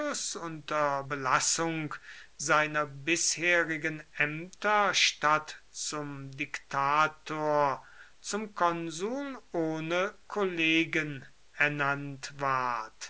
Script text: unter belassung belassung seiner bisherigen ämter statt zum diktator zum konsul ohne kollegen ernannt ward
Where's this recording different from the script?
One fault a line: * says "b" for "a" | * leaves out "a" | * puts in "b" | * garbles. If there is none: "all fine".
* leaves out "belassung"